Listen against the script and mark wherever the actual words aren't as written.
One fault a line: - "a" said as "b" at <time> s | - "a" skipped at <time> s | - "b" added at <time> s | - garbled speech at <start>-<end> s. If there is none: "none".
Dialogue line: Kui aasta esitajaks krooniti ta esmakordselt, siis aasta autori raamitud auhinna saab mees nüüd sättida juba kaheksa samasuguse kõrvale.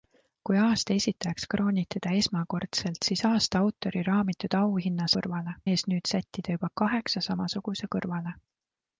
- "saab" said as "kõrvale" at 5.2 s